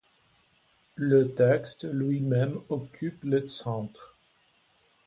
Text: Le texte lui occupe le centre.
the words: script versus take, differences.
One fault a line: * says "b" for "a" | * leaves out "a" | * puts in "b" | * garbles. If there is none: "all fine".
* puts in "même"